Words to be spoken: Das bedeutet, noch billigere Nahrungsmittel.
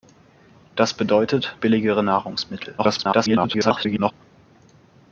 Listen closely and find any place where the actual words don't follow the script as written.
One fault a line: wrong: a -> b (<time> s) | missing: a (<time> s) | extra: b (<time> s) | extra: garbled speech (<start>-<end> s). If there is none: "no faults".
missing: noch (1.6 s)
extra: garbled speech (2.8-4.1 s)